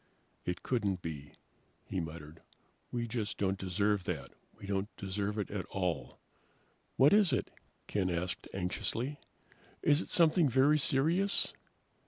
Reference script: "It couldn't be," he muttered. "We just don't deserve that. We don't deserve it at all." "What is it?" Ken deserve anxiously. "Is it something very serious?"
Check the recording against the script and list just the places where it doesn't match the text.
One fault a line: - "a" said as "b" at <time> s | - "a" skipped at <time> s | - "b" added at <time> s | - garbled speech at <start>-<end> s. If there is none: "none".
- "deserve" said as "asked" at 8.1 s